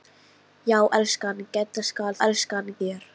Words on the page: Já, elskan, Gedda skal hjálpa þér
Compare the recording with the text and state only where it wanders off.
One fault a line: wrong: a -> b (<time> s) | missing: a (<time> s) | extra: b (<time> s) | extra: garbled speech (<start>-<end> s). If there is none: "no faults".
wrong: hjálpa -> elskan (2.3 s)